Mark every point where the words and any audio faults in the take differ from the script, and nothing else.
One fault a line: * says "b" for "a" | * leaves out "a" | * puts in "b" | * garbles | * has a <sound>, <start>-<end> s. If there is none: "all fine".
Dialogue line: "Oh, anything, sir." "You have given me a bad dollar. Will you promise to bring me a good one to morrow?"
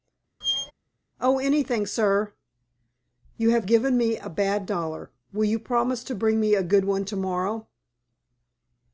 * has a squeak, 0.4-0.7 s